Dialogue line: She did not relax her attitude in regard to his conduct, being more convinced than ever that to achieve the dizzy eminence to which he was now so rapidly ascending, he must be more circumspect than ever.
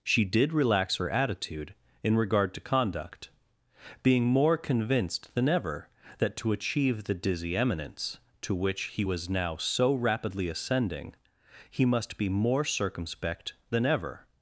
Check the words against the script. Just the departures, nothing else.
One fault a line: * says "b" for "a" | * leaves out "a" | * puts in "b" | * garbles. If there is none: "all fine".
* leaves out "not"
* leaves out "his"